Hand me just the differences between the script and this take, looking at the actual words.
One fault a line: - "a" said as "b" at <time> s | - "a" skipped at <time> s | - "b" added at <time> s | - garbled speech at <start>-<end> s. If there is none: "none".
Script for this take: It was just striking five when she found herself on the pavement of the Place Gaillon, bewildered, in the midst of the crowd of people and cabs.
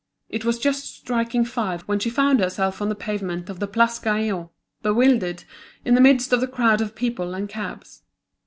none